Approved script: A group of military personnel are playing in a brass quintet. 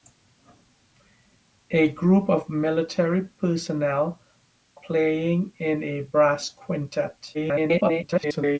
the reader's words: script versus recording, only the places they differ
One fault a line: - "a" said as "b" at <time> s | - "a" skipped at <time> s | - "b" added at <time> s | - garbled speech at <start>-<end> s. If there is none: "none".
- "are" skipped at 4.2 s
- garbled speech at 7.3-8.6 s